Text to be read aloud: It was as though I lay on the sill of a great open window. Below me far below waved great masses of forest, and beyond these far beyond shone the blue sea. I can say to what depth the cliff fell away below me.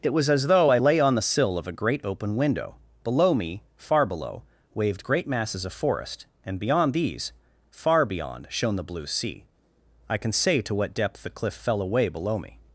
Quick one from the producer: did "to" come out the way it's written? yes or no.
yes